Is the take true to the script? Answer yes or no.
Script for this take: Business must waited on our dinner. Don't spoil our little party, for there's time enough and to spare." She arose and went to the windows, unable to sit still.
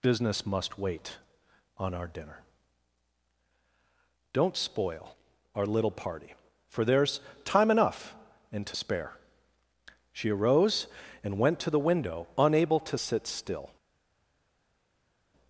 no